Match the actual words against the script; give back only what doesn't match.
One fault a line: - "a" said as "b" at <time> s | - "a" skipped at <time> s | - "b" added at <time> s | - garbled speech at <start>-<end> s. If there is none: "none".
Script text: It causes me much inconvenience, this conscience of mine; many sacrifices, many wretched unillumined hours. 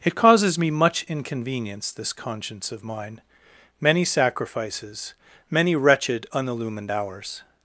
none